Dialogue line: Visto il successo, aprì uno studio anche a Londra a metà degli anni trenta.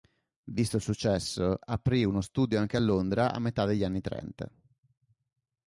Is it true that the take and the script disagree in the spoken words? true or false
false